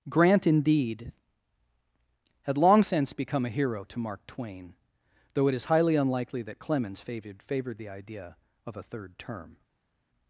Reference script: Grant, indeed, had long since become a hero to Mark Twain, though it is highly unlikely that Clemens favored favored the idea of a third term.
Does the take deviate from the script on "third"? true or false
false